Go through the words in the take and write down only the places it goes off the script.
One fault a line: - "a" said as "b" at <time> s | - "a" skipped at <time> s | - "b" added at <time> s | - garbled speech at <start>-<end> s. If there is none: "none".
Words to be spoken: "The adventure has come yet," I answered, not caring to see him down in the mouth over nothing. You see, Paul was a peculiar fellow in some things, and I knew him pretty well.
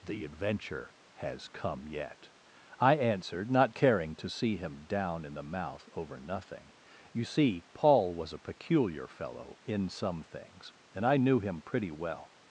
none